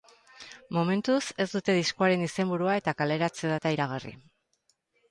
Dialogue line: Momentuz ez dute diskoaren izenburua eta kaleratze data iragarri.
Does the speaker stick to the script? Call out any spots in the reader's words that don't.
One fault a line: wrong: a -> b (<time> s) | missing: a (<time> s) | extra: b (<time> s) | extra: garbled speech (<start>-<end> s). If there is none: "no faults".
no faults